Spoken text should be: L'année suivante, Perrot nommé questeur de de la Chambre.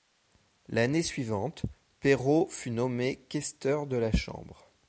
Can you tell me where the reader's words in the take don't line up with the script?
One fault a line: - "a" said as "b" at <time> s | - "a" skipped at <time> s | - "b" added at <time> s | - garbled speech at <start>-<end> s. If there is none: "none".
- "fut" added at 2.5 s
- "de" skipped at 4.0 s